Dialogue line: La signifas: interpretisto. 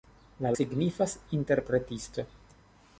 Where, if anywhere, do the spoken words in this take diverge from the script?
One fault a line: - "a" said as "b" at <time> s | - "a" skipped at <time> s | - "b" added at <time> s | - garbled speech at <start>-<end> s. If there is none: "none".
none